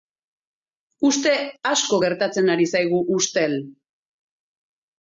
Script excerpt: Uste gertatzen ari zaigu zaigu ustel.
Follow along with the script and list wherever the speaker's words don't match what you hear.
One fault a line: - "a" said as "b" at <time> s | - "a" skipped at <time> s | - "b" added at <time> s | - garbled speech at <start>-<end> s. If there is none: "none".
- "asko" added at 1.7 s
- "zaigu" skipped at 3.0 s